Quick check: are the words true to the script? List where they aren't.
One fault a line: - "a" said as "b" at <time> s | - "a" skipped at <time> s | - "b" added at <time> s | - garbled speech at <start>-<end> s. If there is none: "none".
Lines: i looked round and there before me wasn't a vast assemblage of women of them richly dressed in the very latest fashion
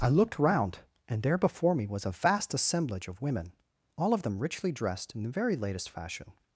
- "wasn't" said as "was" at 1.9 s
- "all" added at 4.0 s